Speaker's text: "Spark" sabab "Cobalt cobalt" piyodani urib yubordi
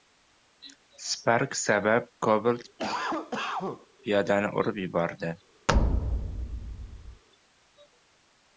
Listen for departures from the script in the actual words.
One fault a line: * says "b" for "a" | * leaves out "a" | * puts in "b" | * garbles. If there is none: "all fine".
* leaves out "cobalt"